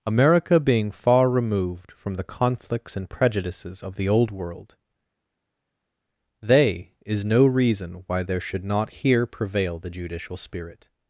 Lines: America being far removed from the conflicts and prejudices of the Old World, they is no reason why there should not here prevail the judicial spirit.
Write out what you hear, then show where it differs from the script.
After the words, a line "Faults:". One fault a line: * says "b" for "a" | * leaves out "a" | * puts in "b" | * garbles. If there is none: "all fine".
America being far removed from the conflicts and prejudices of the Old World, they is no reason why there should not here prevail the judicial spirit.
Faults:
all fine